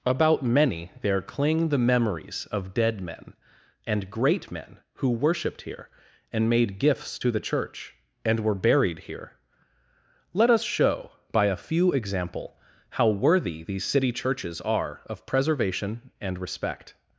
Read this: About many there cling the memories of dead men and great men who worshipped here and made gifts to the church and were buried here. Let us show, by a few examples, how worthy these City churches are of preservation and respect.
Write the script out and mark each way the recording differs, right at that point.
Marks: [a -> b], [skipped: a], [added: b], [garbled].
About many there cling the memories of dead men and great men who worshipped here and made gifts to the church and were buried here. Let us show, by a few [examples, -> example] how worthy these City churches are of preservation and respect.